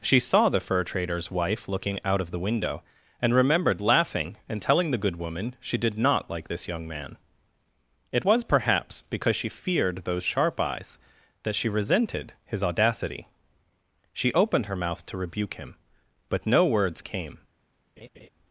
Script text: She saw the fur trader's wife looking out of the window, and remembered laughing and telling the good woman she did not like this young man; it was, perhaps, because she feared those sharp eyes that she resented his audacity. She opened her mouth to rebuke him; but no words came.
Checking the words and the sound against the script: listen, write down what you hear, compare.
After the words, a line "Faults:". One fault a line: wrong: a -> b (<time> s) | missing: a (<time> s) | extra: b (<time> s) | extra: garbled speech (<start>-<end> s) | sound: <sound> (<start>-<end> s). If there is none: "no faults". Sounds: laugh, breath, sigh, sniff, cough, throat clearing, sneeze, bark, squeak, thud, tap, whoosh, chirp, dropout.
She saw the fur trader's wife looking out of the window, and remembered laughing and telling the good woman she did not like this young man; it was, perhaps, because she feared those sharp eyes that she resented his audacity. She opened her mouth to rebuke him; but no words came.
Faults:
sound: laugh (18.0-18.3 s)